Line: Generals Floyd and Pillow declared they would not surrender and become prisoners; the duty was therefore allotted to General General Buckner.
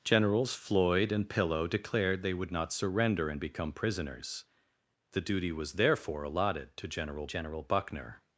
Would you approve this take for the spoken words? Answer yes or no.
yes